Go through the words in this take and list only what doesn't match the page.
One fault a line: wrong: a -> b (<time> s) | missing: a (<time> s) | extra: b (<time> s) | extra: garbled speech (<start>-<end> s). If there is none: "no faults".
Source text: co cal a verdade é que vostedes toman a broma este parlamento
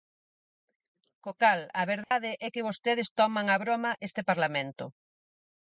no faults